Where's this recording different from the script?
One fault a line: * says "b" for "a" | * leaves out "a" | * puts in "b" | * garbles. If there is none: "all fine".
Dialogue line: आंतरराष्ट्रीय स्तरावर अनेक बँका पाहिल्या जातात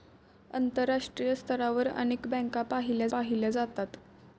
* puts in "पाहिल्या"